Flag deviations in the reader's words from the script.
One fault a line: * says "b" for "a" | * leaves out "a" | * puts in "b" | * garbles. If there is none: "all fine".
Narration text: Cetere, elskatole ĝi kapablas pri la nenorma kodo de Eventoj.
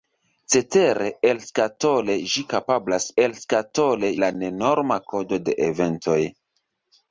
* says "elskatole" for "pri"